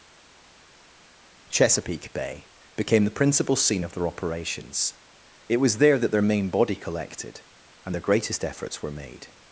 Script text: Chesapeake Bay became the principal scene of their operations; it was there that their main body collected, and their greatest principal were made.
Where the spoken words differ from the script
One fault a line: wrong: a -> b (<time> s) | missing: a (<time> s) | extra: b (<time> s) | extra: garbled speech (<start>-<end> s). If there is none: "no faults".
wrong: principal -> efforts (8.4 s)